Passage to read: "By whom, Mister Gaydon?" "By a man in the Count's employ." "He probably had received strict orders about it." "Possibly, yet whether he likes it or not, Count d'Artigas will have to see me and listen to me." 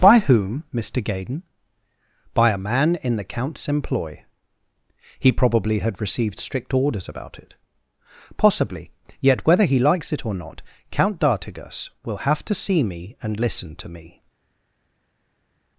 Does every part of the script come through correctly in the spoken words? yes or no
yes